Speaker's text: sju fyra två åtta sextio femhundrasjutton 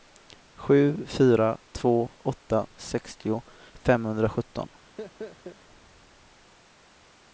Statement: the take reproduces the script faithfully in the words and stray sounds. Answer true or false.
false